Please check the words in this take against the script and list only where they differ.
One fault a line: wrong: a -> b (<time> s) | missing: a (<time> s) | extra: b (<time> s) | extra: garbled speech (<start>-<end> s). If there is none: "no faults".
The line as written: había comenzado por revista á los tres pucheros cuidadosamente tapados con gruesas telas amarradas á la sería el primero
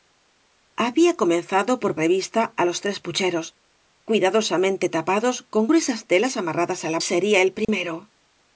no faults